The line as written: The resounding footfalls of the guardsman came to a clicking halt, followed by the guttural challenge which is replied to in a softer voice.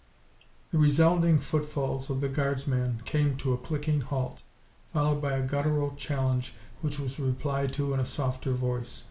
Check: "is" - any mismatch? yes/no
yes